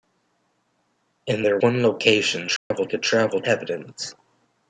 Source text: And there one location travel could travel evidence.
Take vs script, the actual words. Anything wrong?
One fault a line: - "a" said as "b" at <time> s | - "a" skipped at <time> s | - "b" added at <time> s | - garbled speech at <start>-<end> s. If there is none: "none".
none